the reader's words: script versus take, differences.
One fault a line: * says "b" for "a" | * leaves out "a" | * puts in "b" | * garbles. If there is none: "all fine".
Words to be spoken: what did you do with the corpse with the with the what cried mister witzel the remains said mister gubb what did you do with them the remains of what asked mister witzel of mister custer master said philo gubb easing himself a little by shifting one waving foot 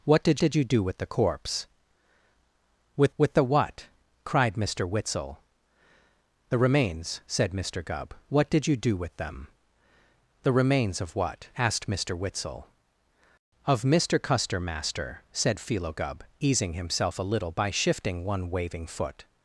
* puts in "did"
* leaves out "the"